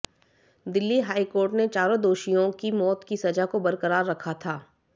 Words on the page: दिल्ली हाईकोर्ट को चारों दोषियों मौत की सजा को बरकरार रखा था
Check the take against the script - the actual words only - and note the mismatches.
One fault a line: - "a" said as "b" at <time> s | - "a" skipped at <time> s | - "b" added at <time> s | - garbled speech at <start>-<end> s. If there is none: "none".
- "को" said as "ने" at 1.5 s
- "की" added at 2.6 s